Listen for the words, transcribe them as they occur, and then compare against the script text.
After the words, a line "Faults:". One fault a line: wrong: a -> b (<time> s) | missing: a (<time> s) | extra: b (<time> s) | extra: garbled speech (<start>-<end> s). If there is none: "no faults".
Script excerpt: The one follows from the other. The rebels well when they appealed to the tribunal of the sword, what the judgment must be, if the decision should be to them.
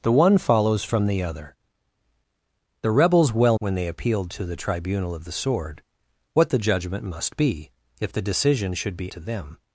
The one follows from the other. The rebels well when they appealed to the tribunal of the sword, what the judgment must be, if the decision should be to them.
Faults:
no faults